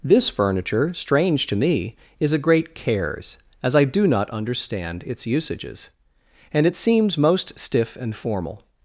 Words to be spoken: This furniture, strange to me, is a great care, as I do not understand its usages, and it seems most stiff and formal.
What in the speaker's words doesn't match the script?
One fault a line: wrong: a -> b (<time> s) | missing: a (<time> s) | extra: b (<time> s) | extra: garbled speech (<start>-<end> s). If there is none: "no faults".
wrong: care -> cares (2.7 s)